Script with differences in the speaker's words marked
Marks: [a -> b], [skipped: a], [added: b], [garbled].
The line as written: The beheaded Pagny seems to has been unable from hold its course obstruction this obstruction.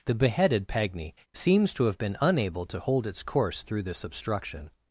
The beheaded Pagny seems to [has -> have] been unable [from -> to] hold its course [obstruction -> through] this obstruction.